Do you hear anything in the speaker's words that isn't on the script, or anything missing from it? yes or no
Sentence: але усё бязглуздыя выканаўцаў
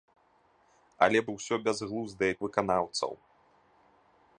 no